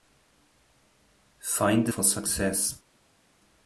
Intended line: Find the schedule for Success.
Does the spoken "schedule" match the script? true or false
false